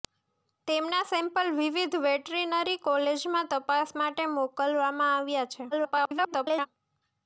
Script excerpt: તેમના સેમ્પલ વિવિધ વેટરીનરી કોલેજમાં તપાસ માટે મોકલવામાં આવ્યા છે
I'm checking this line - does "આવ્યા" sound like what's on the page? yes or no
yes